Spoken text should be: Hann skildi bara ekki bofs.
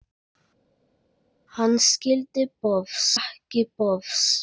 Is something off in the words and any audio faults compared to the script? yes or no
yes